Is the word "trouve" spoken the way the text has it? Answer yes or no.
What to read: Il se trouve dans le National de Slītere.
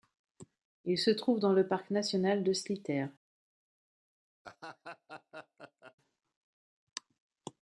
yes